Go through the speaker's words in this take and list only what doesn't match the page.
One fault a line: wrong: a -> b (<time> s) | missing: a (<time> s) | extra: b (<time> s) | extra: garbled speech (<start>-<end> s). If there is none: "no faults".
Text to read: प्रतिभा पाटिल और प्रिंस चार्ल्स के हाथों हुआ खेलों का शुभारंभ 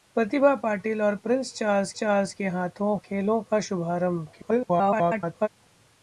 extra: चार्ल्स (1.9 s)
missing: हुआ (3.0 s)
extra: garbled speech (4.3-5.5 s)